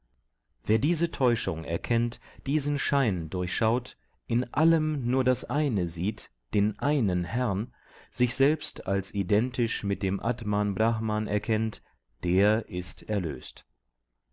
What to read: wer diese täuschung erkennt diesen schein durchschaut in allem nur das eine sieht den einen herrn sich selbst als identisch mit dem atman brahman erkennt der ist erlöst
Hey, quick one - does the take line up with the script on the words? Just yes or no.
yes